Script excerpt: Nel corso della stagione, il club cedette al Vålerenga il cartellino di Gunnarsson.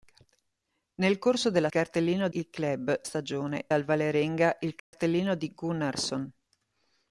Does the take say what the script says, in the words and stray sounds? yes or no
no